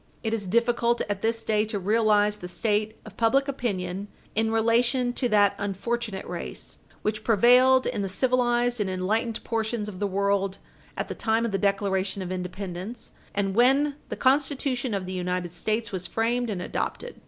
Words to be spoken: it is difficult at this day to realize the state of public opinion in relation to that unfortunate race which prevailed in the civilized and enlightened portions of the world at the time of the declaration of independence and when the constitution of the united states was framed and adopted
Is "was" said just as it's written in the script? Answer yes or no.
yes